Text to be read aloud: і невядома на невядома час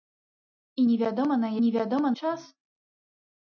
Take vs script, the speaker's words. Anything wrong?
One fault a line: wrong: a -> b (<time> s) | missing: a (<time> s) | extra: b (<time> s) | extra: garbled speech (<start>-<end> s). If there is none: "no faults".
no faults